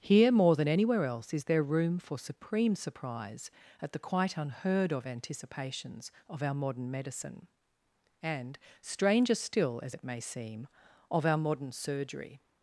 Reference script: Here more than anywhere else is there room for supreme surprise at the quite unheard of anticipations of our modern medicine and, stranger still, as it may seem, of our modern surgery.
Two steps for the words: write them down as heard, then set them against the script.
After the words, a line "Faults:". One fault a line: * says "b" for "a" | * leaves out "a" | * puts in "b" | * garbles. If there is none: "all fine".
Here more than anywhere else is there room for supreme surprise at the quite unheard of anticipations of our modern medicine and, stranger still, as it may seem, of our modern surgery.
Faults:
all fine